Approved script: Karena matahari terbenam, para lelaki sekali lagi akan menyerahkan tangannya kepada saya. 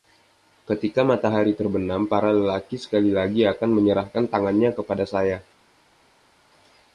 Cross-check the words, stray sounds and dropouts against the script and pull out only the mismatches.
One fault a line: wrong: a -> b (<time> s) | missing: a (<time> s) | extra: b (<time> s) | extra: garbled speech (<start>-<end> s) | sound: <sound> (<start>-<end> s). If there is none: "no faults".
wrong: Karena -> Ketika (0.7 s)